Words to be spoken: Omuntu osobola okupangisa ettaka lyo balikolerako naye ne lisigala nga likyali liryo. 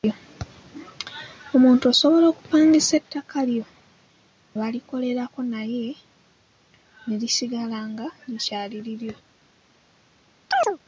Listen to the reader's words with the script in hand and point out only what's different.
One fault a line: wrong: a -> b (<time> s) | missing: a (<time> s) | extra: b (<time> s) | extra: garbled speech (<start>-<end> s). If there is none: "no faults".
no faults